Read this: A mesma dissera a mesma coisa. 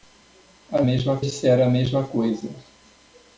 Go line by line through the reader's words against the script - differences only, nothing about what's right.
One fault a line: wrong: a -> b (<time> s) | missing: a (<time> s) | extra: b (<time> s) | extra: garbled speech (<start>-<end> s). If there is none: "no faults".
no faults